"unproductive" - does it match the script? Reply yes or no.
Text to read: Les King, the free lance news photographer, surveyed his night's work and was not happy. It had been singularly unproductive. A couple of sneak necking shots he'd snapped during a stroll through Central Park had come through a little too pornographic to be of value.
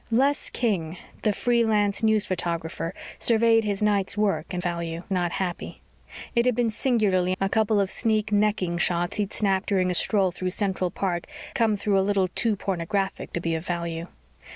no